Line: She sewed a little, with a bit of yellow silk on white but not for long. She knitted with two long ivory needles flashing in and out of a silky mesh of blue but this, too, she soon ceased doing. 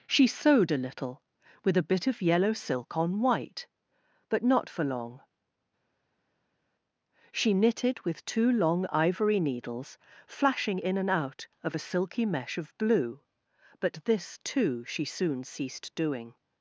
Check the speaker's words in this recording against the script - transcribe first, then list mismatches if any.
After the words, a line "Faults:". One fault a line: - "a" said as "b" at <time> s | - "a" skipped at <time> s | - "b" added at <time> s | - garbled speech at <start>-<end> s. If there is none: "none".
She sewed a little, with a bit of yellow silk on white but not for long. She knitted with two long ivory needles flashing in and out of a silky mesh of blue but this, too, she soon ceased doing.
Faults:
none